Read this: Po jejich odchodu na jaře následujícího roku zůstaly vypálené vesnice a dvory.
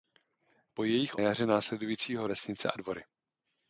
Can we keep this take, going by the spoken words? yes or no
no